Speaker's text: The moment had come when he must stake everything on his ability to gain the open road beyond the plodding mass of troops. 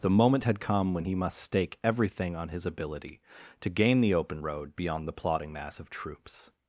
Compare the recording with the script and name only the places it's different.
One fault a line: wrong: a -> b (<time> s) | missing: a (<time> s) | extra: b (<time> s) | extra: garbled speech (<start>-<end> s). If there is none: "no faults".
no faults